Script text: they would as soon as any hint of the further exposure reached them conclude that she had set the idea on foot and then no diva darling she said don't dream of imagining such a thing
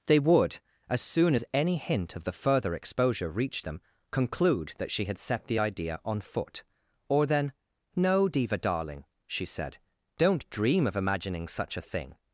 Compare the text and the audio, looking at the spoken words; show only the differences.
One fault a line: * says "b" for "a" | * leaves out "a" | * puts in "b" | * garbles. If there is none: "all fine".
* says "or" for "and"